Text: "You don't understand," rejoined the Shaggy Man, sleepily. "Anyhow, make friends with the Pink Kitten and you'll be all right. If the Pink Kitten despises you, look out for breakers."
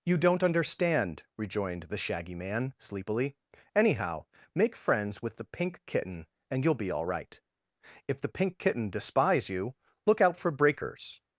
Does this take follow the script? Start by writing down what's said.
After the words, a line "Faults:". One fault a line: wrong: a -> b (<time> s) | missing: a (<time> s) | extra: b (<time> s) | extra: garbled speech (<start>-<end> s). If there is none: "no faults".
"You don't understand," rejoined the Shaggy Man, sleepily. "Anyhow, make friends with the Pink Kitten and you'll be all right. If the Pink Kitten despise you, look out for breakers."
Faults:
wrong: despises -> despise (8.9 s)